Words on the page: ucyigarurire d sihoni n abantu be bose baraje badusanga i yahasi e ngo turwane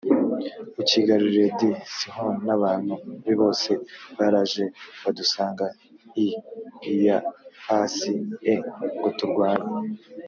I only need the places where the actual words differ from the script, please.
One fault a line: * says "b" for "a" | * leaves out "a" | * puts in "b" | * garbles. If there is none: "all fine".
all fine